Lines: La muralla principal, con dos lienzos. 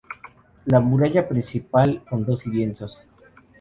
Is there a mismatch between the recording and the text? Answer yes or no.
no